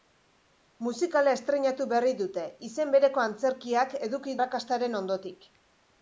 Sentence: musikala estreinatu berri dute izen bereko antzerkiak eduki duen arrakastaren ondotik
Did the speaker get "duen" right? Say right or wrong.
wrong